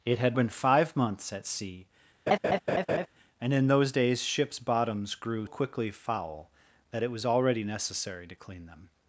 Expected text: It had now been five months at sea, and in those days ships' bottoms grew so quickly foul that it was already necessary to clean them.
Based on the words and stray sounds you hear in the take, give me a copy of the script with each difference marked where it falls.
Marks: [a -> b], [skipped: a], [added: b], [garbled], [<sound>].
It had [skipped: now] been five months at sea, [laugh] and in those days ships' bottoms grew [skipped: so] quickly foul that it was already necessary to clean them.